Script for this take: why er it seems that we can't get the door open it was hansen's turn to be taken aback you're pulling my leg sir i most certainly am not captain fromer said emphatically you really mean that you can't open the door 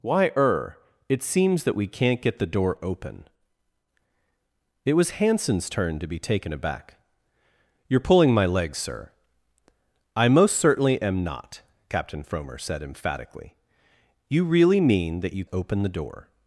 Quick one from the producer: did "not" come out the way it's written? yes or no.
yes